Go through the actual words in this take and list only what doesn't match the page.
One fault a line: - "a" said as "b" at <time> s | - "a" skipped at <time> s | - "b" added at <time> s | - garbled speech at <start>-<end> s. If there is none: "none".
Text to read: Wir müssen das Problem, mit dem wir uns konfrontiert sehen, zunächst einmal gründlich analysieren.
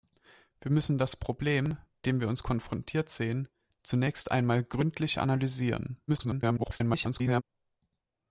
- "mit" skipped at 1.8 s
- garbled speech at 6.1-7.4 s